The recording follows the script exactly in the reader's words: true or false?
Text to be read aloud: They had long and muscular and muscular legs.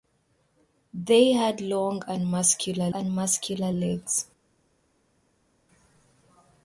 true